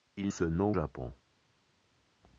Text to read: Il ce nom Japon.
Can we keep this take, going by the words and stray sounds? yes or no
yes